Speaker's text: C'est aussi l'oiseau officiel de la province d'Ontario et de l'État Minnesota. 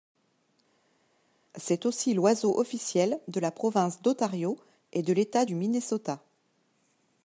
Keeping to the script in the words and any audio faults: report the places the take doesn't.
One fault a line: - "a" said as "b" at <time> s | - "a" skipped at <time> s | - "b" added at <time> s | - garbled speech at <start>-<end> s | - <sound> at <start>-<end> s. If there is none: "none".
- "du" added at 5.4 s